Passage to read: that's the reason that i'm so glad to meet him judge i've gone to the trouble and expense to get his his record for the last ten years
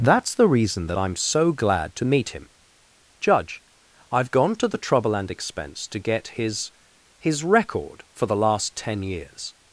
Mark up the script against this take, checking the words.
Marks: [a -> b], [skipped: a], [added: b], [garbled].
that's the reason that i'm so glad to meet him judge i've gone to the trouble and expense to get his his record for the last ten years